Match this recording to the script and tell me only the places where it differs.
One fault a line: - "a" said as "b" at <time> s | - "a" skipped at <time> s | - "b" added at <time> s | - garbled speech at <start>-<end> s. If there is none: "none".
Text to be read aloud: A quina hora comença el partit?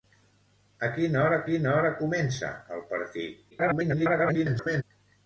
- "quina hora" added at 1.5 s
- garbled speech at 3.5-4.8 s